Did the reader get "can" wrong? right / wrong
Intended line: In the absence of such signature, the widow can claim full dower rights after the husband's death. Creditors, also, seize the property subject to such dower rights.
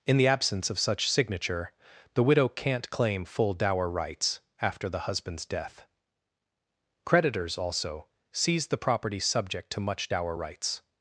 wrong